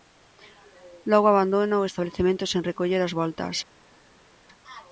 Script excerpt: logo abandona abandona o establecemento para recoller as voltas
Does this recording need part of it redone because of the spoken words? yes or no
yes